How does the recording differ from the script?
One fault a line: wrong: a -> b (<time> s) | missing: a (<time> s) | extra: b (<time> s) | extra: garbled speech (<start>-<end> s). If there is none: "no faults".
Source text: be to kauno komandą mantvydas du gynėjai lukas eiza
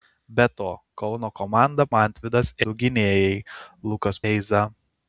no faults